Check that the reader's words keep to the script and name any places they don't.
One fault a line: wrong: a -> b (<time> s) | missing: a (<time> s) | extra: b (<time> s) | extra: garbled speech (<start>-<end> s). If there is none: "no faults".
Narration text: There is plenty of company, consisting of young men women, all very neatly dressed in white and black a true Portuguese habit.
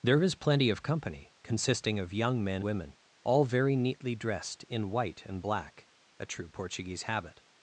no faults